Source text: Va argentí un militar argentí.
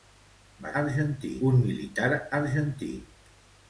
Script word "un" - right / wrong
right